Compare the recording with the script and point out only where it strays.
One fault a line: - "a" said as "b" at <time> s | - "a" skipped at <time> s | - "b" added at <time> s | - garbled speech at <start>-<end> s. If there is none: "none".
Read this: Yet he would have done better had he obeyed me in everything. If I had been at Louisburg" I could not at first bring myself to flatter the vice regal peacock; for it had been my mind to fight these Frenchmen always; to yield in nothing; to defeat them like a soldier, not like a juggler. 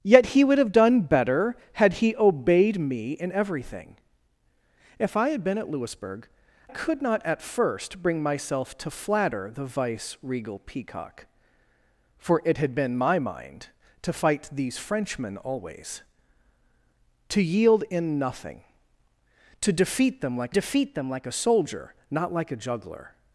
- "I" skipped at 6.3 s
- "defeat them like" added at 20.5 s